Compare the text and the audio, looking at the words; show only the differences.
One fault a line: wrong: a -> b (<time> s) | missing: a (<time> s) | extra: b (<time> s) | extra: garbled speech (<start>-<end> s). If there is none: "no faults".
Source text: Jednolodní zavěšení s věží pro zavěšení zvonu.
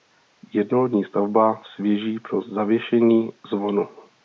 wrong: zavěšení -> stavba (1.0 s)